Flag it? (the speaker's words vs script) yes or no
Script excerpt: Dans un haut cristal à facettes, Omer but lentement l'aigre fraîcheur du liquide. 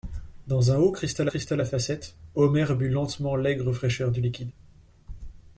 yes